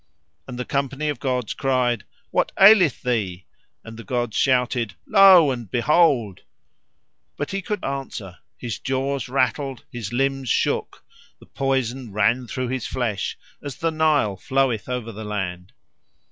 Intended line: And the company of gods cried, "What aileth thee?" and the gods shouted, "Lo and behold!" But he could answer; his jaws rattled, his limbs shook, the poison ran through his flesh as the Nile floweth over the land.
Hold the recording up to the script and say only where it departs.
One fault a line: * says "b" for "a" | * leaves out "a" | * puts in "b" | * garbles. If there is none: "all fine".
all fine